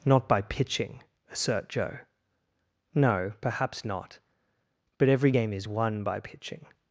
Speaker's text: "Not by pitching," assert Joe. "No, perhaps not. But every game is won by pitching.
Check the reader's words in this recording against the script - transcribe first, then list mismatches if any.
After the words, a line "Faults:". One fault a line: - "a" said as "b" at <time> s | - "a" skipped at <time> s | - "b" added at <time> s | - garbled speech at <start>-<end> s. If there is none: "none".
"Not by pitching," assert Joe. "No, perhaps not. But every game is won by pitching.
Faults:
none